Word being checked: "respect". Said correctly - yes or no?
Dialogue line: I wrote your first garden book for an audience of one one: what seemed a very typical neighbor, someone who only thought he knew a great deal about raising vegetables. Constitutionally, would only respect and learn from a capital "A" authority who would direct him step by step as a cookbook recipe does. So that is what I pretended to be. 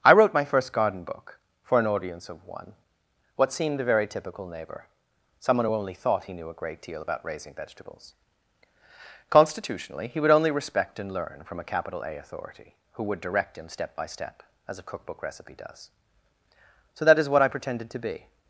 yes